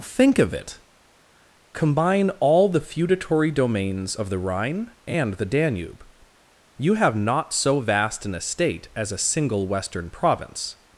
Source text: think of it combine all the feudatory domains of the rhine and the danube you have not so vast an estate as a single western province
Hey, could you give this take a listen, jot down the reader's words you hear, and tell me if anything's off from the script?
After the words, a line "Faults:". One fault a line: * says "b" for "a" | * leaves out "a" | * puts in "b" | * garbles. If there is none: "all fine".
think of it combine all the feudatory domains of the rhine and the danube you have not so vast an estate as a single western province
Faults:
all fine